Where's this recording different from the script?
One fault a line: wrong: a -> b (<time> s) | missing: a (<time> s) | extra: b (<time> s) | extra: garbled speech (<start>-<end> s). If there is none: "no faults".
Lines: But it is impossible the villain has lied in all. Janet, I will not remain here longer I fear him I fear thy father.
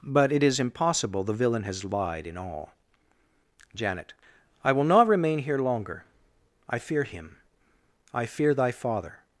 no faults